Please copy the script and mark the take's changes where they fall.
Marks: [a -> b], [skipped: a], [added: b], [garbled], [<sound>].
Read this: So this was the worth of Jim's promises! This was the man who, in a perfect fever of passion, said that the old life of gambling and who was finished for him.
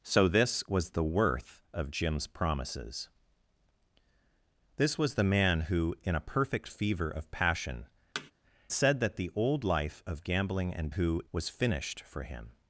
So this was the worth of Jim's promises! This was the man who, in a perfect fever of passion, [thud] said that the old life of gambling and who was finished for him.